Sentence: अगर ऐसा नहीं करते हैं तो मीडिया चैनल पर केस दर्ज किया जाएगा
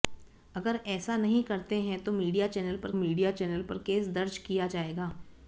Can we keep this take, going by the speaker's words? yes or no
no